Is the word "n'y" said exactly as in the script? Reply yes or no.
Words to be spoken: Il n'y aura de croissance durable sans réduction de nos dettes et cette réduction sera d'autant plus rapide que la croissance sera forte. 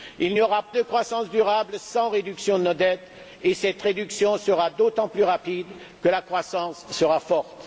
yes